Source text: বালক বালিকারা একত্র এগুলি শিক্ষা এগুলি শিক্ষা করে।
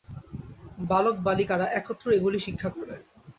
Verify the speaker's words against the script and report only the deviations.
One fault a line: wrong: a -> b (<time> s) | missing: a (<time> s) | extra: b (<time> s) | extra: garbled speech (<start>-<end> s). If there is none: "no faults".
missing: এগুলি শিক্ষা (2.7 s)